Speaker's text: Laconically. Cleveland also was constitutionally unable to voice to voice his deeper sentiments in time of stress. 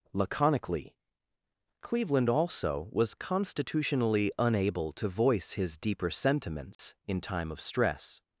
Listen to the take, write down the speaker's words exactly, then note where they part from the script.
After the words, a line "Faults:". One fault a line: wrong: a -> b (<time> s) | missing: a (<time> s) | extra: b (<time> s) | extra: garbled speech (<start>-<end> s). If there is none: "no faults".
Laconically. Cleveland also was constitutionally unable to voice his deeper sentiments in time of stress.
Faults:
missing: to voice (5.5 s)